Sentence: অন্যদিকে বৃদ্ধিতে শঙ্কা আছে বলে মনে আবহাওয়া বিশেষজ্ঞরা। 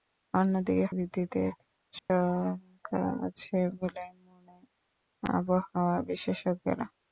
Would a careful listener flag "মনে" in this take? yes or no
no